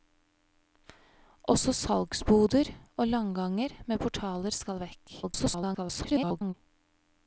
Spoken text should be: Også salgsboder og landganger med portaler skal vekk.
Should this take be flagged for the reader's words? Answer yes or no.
yes